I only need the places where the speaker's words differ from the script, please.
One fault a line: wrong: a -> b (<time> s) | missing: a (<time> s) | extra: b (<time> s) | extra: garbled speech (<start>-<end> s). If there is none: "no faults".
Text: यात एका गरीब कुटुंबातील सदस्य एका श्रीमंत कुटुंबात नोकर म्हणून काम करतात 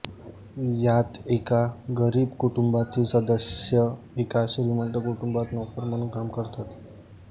no faults